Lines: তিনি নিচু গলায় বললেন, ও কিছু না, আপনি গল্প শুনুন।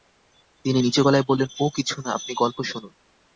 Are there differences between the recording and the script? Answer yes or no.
no